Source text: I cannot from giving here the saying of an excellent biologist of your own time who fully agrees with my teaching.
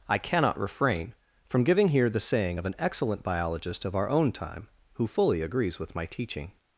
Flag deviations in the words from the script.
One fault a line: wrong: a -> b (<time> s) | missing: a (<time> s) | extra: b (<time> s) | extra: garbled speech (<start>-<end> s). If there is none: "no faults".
extra: refrain (0.6 s)
wrong: your -> our (3.9 s)